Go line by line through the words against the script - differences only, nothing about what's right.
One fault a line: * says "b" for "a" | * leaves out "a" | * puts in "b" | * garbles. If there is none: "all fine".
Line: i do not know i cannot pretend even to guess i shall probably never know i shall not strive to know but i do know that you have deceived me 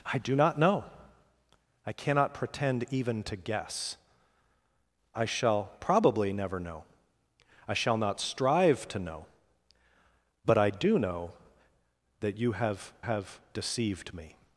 * puts in "have"